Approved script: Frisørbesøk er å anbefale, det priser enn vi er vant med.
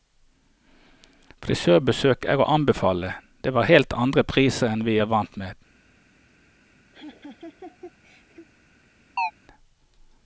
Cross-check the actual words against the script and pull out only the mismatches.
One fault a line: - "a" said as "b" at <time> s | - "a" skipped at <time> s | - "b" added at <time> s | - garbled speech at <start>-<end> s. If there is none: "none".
- "var helt andre" added at 3.6 s